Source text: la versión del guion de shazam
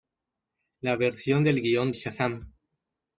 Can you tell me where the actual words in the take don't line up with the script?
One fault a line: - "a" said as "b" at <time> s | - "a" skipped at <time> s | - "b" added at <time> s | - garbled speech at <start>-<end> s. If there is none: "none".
- "de" skipped at 1.9 s